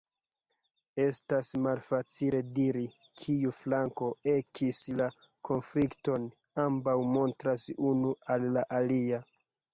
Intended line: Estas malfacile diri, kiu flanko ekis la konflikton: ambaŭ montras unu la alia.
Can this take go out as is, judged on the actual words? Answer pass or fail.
fail